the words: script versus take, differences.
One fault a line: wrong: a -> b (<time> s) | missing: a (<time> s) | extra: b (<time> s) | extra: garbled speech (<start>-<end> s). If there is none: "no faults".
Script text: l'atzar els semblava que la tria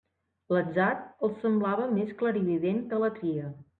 extra: més clarivident (2.0 s)